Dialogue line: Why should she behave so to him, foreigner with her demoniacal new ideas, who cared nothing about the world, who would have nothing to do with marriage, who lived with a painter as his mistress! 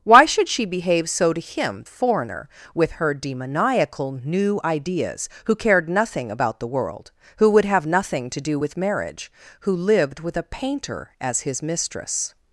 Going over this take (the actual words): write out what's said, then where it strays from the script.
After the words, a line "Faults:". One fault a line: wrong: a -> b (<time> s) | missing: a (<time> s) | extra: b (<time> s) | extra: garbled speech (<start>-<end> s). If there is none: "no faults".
Why should she behave so to him, foreigner with her demoniacal new ideas, who cared nothing about the world, who would have nothing to do with marriage, who lived with a painter as his mistress!
Faults:
no faults